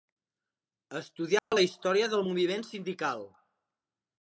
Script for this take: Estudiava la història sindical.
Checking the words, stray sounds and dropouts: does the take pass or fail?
fail